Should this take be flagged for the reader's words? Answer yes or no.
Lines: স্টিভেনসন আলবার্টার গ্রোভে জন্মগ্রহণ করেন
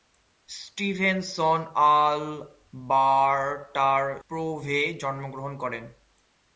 no